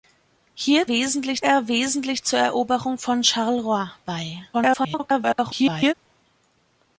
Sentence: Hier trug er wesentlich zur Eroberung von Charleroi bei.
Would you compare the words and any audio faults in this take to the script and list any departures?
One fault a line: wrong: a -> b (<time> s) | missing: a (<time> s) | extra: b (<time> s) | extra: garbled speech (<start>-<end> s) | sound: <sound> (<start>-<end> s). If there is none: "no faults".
wrong: trug -> wesentlich (0.9 s)
extra: garbled speech (4.5-5.9 s)